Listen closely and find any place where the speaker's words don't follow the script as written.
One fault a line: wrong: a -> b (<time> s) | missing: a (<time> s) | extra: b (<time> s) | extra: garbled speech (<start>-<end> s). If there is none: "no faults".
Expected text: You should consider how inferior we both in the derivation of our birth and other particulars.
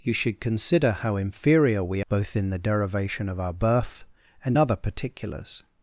no faults